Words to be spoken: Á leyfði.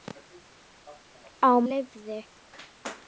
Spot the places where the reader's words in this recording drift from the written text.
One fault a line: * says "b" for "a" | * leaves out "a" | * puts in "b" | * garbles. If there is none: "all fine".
all fine